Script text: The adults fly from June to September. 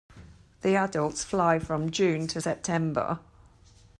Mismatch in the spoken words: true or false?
false